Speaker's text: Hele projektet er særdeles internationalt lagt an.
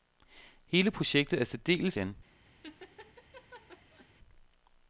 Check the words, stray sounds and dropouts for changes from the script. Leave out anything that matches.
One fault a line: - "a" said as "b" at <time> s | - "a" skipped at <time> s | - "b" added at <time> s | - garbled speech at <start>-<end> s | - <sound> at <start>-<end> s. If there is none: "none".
- "internationalt lagt" skipped at 2.0 s
- laugh at 2.6-4.1 s